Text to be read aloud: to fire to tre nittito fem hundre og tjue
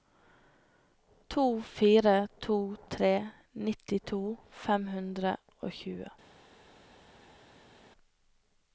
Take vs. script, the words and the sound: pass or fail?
pass